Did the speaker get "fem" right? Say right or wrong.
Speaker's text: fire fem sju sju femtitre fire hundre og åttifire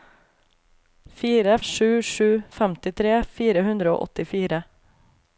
wrong